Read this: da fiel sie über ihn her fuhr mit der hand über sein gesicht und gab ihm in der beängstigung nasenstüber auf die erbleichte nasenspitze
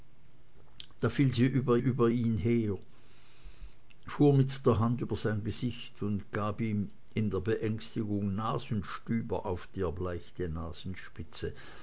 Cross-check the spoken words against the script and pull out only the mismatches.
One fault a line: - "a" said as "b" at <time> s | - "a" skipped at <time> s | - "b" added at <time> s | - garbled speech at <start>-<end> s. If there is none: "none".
- "über" added at 1.8 s